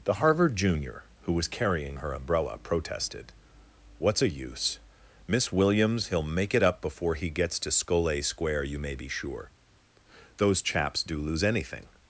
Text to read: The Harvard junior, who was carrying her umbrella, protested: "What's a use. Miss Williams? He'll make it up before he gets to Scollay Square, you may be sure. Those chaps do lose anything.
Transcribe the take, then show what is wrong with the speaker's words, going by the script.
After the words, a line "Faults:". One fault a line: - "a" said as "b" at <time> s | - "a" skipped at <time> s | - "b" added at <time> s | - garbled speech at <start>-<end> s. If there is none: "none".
The Harvard junior, who was carrying her umbrella, protested: "What's a use. Miss Williams? He'll make it up before he gets to Scollay Square, you may be sure. Those chaps do lose anything.
Faults:
none